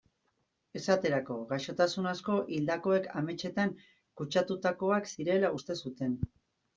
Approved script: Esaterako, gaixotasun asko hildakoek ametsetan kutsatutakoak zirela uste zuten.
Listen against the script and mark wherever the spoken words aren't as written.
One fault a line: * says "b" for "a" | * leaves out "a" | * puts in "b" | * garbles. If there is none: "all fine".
all fine